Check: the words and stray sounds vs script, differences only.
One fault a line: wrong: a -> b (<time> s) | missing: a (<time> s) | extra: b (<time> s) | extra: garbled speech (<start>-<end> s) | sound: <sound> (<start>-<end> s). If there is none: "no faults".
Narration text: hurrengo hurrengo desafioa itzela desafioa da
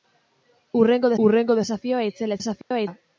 sound: dropout (2.6-2.7 s)